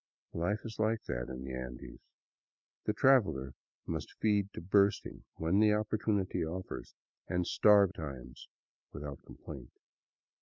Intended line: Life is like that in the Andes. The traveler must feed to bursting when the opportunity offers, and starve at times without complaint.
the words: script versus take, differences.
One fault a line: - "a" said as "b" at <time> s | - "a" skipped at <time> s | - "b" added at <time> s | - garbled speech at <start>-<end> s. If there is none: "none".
- "at" skipped at 7.9 s